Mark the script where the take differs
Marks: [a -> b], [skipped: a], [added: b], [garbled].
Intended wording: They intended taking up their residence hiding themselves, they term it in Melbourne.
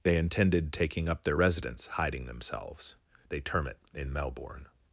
They intended taking up their residence hiding themselves, they term it in Melbourne.